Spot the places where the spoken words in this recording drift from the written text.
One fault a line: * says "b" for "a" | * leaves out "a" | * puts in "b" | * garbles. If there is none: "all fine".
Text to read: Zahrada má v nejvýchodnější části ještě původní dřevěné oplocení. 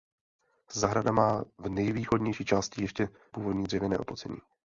all fine